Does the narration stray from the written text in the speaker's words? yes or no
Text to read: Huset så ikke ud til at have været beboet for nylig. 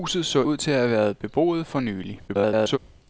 yes